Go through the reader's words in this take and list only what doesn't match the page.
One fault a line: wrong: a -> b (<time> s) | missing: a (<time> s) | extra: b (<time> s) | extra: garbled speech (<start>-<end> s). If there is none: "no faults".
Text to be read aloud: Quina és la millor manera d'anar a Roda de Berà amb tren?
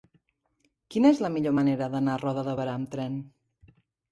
no faults